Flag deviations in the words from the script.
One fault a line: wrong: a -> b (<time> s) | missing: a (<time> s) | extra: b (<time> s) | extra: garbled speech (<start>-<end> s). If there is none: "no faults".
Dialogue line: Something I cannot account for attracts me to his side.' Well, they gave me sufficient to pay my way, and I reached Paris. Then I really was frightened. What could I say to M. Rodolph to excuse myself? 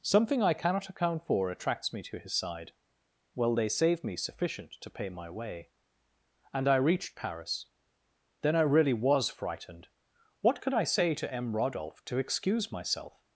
wrong: gave -> save (3.7 s)